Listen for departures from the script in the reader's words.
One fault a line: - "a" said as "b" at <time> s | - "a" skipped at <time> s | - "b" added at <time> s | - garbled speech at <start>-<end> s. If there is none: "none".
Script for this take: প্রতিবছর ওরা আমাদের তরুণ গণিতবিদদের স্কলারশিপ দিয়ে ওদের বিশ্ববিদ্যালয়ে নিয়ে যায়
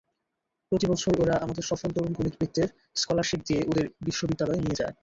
- "সফল" added at 1.6 s